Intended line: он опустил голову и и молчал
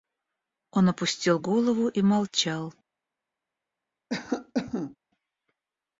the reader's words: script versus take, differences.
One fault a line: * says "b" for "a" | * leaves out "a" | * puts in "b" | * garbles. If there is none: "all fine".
* leaves out "и"